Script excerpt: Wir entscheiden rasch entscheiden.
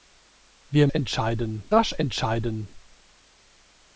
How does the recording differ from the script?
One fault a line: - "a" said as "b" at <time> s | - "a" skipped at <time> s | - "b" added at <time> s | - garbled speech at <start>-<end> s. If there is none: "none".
none